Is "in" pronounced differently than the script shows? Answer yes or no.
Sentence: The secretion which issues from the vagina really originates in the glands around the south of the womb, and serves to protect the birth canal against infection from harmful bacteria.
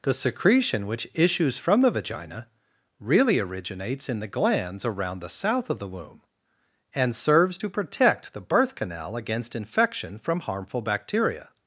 no